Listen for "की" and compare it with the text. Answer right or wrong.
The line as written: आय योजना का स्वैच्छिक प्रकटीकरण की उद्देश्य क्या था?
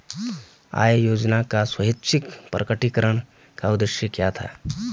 wrong